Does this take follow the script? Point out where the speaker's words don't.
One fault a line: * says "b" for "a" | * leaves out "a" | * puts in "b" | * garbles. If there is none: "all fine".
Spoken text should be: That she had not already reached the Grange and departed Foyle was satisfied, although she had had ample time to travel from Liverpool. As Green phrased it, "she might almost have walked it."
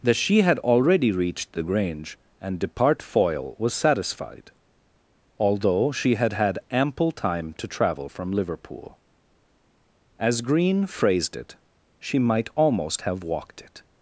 * leaves out "not"
* says "depart" for "departed"